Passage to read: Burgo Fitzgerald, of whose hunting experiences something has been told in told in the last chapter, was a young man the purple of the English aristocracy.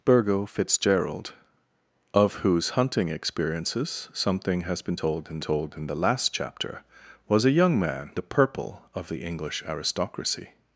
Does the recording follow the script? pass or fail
pass